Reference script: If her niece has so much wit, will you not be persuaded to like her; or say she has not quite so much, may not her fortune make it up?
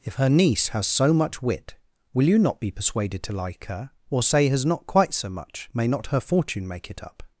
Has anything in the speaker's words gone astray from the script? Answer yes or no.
yes